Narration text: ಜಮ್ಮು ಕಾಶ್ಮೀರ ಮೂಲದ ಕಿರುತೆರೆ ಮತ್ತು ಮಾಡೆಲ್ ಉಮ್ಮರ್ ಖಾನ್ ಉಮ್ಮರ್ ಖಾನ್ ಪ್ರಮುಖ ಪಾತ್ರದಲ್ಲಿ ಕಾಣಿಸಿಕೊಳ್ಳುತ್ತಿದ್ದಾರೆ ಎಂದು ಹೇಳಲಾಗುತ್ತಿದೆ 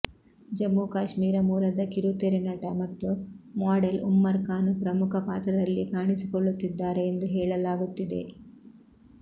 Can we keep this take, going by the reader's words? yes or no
no